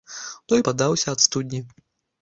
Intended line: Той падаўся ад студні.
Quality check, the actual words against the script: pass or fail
pass